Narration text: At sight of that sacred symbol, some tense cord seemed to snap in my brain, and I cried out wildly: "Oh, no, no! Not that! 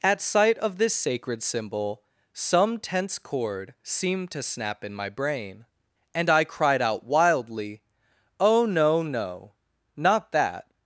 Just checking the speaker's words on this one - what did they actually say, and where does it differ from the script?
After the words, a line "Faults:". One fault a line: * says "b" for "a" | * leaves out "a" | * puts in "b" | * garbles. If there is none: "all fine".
At sight of this sacred symbol, some tense cord seemed to snap in my brain, and I cried out wildly: "Oh, no, no! Not that!
Faults:
* says "this" for "that"